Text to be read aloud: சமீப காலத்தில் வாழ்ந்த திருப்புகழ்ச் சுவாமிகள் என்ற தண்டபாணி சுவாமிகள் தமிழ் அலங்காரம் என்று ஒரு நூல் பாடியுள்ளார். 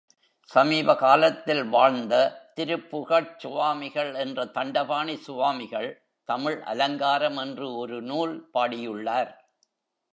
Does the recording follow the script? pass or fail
pass